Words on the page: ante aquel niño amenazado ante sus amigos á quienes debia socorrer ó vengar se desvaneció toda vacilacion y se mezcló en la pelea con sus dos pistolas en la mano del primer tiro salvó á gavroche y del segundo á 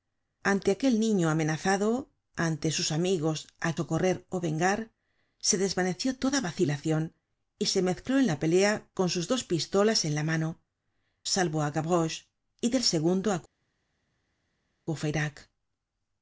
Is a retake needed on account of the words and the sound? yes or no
yes